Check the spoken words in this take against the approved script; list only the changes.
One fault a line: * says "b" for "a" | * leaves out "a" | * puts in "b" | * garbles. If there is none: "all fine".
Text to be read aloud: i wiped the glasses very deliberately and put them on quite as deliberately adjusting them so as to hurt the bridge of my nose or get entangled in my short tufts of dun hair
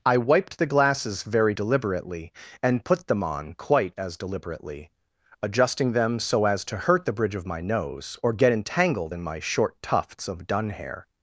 all fine